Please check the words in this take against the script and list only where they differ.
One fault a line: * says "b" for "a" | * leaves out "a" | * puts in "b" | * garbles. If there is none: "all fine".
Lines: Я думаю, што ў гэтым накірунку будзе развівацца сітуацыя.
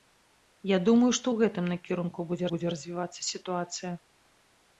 * puts in "будзе"